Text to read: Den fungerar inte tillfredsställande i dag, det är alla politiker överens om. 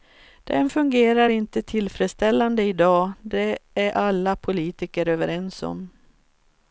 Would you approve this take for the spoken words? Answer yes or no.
yes